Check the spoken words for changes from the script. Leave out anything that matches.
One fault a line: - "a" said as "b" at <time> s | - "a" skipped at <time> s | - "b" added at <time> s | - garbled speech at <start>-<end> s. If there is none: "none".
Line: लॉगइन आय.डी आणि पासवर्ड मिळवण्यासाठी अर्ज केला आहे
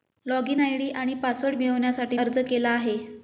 none